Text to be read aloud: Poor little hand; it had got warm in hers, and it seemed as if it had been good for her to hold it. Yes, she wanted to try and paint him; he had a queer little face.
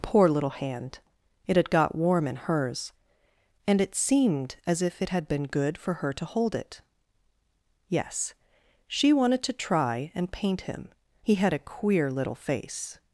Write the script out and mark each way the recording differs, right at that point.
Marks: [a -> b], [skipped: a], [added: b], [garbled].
Poor little hand; it had got warm in hers, and it seemed as if it had been good for her to hold it. Yes, she wanted to try and paint him; he had a queer little face.